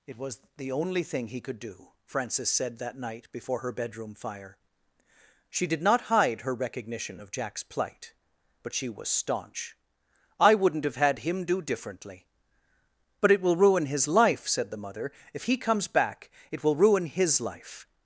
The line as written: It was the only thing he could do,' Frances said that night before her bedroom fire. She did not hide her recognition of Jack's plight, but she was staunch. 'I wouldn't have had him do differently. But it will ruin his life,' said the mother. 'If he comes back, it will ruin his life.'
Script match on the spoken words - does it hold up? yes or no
yes